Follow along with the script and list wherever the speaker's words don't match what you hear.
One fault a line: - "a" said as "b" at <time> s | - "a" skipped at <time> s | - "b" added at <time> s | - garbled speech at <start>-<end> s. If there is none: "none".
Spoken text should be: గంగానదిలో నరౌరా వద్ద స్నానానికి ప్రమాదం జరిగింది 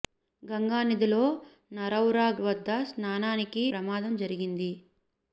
none